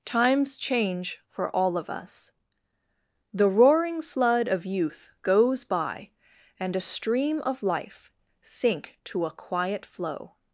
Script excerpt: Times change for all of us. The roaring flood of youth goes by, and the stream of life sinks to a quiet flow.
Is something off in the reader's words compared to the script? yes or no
yes